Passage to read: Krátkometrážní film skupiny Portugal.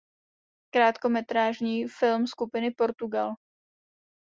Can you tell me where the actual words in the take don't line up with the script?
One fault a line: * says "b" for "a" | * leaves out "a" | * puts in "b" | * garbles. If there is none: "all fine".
all fine